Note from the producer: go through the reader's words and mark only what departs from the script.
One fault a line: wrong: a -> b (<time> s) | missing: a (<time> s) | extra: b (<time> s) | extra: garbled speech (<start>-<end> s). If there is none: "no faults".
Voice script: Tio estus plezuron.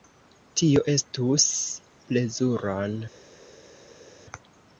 no faults